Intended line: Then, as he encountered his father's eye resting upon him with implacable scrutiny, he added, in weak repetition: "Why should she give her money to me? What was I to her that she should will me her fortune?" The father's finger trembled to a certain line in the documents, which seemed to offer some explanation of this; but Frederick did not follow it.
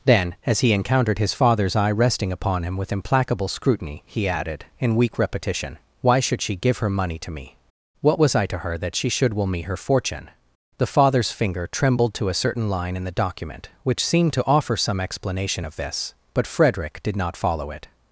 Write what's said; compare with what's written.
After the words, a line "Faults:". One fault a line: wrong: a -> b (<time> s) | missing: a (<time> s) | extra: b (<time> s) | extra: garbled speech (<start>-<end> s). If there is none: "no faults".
Then, as he encountered his father's eye resting upon him with implacable scrutiny, he added, in weak repetition: "Why should she give her money to me? What was I to her that she should will me her fortune?" The father's finger trembled to a certain line in the document, which seemed to offer some explanation of this; but Frederick did not follow it.
Faults:
wrong: documents -> document (13.1 s)